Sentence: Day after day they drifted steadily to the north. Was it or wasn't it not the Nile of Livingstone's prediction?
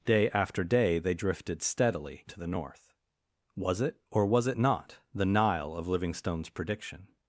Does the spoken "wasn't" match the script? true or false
false